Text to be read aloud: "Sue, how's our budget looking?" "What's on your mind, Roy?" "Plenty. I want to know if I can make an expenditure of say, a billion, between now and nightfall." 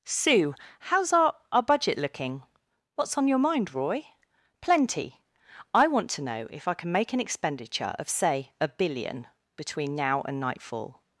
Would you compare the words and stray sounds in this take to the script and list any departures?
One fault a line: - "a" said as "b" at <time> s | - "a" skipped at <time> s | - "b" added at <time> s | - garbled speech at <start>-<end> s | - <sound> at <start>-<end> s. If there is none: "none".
- "our" added at 1.5 s